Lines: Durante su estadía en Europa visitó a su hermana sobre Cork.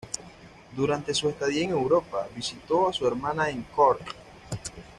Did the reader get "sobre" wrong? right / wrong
wrong